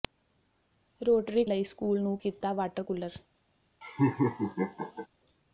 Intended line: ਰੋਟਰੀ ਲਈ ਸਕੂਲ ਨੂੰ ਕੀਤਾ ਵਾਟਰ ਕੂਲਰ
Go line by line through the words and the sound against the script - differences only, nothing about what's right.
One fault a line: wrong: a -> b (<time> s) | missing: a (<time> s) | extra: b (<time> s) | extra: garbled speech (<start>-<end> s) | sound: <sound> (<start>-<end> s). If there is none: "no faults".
sound: laugh (3.8-5.1 s)